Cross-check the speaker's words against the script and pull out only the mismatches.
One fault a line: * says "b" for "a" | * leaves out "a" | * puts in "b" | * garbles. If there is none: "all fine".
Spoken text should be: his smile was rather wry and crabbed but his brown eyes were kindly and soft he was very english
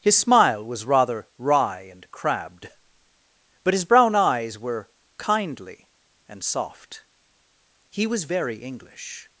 all fine